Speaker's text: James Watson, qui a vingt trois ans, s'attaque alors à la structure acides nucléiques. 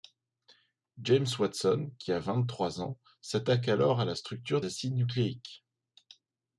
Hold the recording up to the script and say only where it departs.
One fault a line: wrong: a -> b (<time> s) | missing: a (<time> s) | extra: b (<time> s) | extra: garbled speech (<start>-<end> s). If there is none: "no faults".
no faults